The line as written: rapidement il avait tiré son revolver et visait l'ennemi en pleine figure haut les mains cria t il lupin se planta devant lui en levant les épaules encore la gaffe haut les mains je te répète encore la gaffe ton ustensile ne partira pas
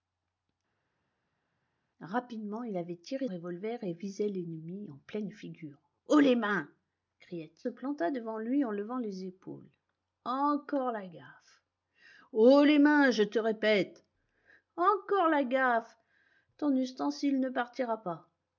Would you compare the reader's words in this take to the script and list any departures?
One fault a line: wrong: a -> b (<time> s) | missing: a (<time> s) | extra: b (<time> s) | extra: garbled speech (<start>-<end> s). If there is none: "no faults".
missing: son (3.3 s)
missing: il lupin se (7.6 s)